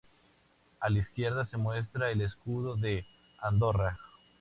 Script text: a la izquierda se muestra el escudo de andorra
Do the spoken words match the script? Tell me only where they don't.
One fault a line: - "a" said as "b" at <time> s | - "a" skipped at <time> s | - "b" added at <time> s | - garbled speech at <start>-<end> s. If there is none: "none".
none